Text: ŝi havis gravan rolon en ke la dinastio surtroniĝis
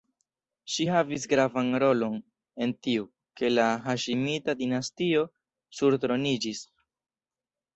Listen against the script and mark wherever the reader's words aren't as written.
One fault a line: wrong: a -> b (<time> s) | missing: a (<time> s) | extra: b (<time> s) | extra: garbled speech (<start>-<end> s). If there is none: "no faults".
extra: tiu (2.9 s)
extra: haŝimita (3.9 s)